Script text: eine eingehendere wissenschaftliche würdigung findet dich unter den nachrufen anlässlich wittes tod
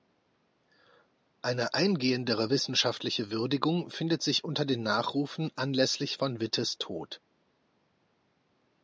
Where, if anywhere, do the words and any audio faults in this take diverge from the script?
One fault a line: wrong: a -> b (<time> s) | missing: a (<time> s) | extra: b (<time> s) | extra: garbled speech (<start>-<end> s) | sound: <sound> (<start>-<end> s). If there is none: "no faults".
wrong: dich -> sich (4.2 s)
extra: von (6.2 s)